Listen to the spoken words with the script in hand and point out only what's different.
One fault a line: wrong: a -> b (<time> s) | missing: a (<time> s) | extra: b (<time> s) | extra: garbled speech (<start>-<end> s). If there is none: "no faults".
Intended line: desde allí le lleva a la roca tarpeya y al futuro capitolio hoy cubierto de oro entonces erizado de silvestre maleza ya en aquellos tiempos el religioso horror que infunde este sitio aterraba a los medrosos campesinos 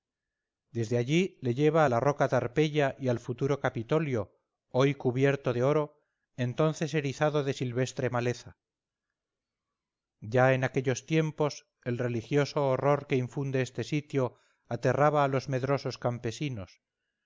no faults